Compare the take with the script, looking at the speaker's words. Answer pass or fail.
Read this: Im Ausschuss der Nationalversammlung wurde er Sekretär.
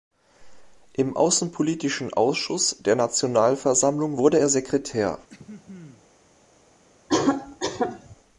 fail